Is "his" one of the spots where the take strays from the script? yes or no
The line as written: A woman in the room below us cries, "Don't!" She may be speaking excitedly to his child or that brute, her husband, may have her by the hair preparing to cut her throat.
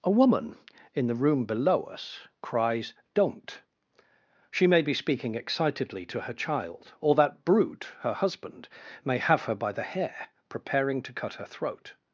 yes